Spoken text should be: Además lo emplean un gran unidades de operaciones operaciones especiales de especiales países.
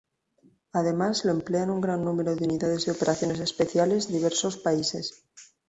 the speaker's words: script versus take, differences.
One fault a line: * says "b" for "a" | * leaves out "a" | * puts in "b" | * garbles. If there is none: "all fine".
* puts in "número de"
* leaves out "operaciones"
* says "diversos" for "especiales"